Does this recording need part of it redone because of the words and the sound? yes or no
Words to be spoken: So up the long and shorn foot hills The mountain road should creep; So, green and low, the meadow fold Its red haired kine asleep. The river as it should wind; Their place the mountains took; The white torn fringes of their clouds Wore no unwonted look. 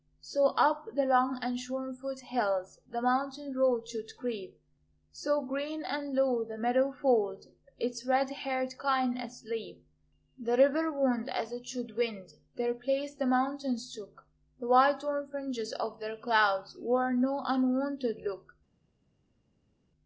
yes